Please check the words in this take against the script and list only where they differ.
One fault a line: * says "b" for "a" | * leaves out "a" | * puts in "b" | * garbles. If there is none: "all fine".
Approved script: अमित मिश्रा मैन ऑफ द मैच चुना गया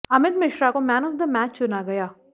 * puts in "को"